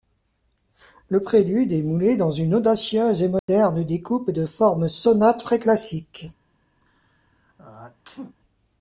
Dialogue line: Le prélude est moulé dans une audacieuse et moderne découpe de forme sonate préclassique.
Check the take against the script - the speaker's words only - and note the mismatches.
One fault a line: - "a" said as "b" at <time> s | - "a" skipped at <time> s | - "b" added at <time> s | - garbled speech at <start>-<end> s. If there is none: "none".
none